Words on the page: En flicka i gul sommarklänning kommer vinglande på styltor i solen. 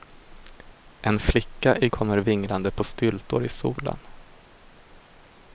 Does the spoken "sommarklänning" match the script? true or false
false